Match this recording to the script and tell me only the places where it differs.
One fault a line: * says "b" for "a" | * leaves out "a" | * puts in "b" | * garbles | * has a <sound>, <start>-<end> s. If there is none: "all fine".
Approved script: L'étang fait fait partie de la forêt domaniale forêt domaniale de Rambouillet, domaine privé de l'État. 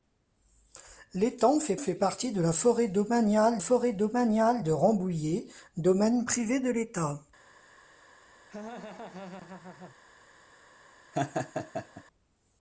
* has a laugh, 8.5-10.0 s
* has a laugh, 11.1-12.0 s